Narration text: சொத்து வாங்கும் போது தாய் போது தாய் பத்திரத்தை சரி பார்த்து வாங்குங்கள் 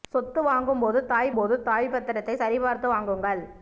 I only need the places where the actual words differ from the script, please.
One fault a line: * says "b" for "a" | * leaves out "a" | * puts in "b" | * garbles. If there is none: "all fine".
all fine